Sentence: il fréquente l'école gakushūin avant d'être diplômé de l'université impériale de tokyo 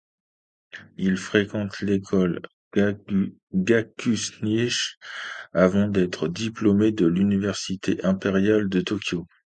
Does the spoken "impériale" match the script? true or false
true